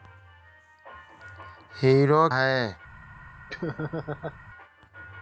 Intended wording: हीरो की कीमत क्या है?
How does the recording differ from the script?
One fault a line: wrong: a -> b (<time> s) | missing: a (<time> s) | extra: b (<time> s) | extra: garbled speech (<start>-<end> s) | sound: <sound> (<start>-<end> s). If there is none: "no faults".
missing: की कीमत क्या (2.3 s)
sound: laugh (3.5-4.4 s)